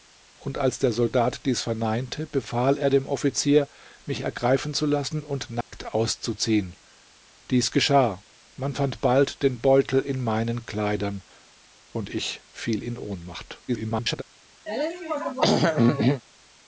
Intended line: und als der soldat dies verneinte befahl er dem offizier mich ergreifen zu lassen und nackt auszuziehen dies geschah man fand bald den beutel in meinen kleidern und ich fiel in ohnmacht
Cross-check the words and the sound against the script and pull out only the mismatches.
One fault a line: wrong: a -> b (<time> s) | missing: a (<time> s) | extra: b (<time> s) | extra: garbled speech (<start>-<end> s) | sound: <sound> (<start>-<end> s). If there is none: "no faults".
sound: dropout (5.6-5.7 s)
extra: garbled speech (13.7-14.2 s)
sound: throat clearing (14.7-16.2 s)